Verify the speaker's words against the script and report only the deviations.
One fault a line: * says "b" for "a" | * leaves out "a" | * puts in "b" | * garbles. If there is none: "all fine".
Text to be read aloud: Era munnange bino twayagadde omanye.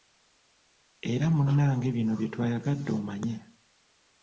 * puts in "bye"